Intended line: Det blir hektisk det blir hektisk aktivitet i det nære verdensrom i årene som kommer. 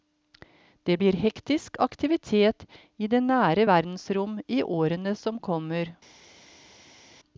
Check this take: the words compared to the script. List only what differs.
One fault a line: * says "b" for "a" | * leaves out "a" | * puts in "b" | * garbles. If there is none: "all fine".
* leaves out "det blir hektisk"